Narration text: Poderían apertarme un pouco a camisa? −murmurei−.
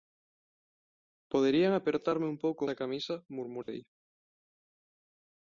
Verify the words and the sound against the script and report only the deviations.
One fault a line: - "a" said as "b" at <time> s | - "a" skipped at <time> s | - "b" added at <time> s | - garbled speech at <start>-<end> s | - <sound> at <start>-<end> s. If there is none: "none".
- dropout at 3.6-3.7 s